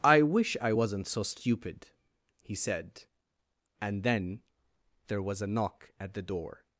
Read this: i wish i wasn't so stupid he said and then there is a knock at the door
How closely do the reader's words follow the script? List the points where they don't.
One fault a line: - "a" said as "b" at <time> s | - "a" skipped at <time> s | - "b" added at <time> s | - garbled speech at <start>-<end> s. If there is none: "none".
- "is" said as "was" at 5.2 s